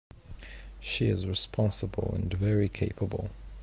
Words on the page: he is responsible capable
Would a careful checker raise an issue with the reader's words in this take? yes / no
yes